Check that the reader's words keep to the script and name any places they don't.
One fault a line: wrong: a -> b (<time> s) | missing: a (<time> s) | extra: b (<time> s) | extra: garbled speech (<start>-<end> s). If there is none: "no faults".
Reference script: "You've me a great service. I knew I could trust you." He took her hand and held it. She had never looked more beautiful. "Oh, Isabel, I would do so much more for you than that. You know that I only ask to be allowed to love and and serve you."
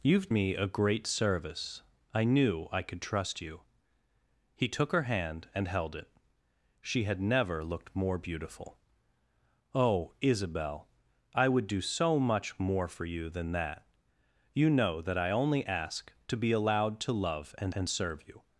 no faults